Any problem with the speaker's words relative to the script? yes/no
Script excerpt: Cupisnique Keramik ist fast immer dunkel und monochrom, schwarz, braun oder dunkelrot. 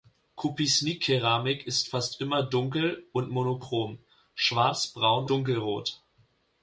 yes